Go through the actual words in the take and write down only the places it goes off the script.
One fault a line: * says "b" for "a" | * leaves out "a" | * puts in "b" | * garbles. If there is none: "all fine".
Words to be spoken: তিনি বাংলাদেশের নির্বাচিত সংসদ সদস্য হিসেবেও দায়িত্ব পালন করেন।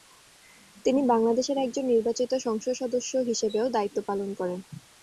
* puts in "একজন"